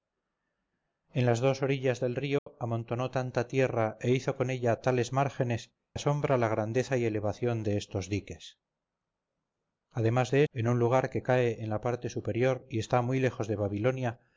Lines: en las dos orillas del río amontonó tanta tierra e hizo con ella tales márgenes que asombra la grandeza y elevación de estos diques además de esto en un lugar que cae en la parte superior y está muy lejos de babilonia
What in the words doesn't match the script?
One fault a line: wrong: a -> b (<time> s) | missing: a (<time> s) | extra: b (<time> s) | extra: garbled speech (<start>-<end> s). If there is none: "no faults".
missing: que (5.8 s)
missing: esto (10.4 s)